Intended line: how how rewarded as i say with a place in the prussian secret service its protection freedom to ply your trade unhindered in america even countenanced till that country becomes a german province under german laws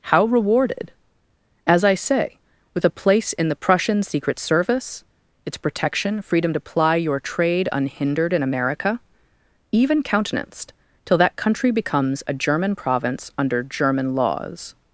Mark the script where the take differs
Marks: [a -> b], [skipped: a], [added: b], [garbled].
how [skipped: how] rewarded as i say with a place in the prussian secret service its protection freedom to ply your trade unhindered in america even countenanced till that country becomes a german province under german laws